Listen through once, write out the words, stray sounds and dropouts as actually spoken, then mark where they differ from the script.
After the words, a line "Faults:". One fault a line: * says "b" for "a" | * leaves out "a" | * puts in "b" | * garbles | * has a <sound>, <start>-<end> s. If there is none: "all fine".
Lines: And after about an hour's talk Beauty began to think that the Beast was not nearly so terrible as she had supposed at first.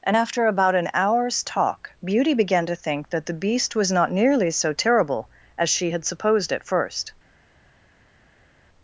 And after about an hour's talk Beauty began to think that the Beast was not nearly so terrible as she had supposed at first.
Faults:
all fine